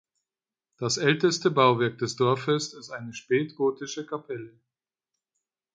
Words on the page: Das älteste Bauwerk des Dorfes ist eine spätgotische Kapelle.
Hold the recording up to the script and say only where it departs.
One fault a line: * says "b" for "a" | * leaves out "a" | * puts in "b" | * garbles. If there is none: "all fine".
all fine